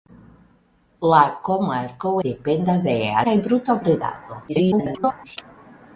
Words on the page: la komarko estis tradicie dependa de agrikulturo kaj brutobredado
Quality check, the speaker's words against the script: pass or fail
fail